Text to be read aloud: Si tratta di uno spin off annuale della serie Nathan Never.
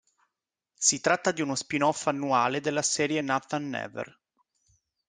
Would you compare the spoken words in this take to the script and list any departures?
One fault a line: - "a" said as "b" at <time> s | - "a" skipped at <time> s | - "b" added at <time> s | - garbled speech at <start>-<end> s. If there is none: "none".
none